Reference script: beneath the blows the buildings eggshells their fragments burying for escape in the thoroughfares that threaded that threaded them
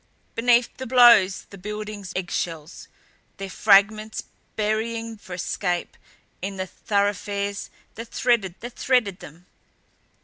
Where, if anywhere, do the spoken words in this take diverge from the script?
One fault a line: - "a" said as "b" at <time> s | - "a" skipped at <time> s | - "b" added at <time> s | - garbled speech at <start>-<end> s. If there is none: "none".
none